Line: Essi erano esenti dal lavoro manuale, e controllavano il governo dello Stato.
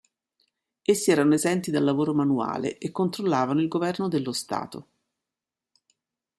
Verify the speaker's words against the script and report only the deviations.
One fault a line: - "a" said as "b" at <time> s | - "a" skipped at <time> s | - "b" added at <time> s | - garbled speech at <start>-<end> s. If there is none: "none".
none